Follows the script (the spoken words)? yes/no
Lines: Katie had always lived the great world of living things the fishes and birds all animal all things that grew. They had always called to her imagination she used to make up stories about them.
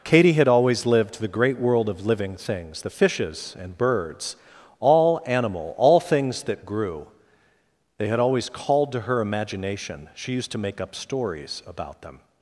yes